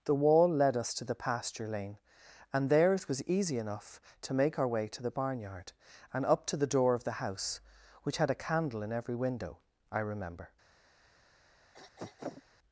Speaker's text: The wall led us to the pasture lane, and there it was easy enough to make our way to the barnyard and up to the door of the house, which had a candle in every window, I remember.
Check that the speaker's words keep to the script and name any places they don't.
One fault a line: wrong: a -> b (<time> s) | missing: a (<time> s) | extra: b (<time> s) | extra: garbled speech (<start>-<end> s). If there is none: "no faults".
no faults